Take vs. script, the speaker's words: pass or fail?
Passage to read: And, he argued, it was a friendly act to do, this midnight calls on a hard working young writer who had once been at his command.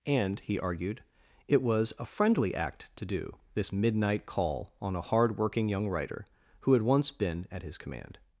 fail